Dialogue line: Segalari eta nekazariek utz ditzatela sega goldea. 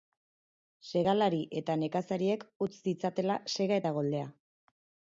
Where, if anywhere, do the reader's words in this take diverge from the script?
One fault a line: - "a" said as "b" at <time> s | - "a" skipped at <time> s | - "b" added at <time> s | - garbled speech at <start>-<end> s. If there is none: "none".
- "eta" added at 3.8 s